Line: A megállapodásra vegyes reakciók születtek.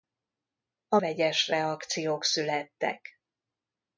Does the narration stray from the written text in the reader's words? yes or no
yes